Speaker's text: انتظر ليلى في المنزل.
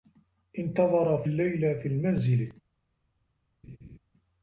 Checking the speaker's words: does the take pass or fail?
pass